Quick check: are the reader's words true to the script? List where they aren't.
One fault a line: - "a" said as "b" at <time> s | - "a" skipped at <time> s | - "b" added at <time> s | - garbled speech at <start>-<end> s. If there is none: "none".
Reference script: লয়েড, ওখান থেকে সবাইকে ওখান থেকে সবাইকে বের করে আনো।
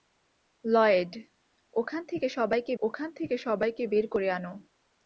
none